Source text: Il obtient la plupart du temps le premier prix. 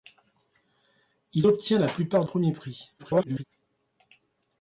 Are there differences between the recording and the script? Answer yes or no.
yes